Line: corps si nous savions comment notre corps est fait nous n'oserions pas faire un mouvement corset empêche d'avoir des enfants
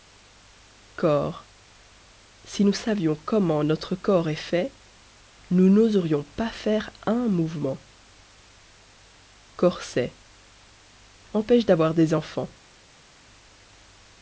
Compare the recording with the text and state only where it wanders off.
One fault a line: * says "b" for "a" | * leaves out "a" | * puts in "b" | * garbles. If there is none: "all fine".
all fine